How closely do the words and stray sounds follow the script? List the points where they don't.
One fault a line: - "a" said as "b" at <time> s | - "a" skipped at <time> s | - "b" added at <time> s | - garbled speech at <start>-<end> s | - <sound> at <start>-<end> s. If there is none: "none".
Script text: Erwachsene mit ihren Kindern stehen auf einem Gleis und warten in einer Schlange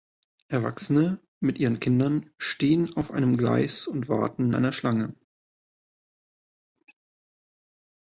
- "in" skipped at 4.5 s